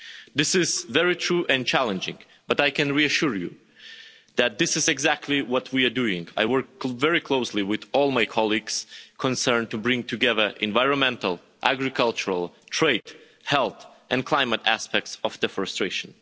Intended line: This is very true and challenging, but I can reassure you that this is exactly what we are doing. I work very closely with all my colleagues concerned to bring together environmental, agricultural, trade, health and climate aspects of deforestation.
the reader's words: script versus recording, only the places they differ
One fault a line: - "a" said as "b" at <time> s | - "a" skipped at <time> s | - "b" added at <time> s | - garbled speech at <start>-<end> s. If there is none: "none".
none